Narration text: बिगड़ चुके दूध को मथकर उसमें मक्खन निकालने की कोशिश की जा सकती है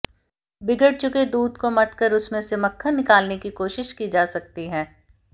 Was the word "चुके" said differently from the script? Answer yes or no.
no